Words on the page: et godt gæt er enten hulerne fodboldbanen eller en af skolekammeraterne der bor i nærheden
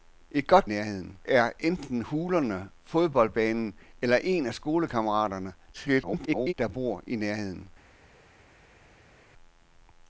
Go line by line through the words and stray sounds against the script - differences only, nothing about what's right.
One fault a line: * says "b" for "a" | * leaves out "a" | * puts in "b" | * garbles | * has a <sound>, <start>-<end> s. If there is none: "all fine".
* says "nærheden" for "gæt"
* garbles